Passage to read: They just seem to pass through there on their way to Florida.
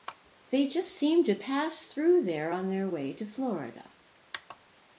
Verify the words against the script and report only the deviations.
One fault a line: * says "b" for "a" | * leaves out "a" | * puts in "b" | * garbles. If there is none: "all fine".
all fine